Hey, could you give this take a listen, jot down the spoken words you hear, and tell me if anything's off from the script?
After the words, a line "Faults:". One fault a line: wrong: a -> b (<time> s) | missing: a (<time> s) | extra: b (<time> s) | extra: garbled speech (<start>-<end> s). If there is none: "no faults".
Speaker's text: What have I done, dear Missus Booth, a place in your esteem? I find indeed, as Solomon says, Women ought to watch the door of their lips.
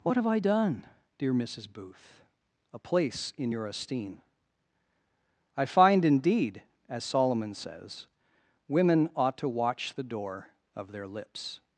What have I done, dear Missus Booth, a place in your esteem? I find indeed, as Solomon says, Women ought to watch the door of their lips.
Faults:
no faults